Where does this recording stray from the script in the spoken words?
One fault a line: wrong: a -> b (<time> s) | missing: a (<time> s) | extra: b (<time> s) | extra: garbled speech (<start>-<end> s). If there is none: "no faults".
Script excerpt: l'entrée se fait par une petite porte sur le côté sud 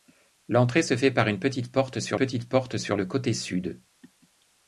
extra: petite porte sur (2.2 s)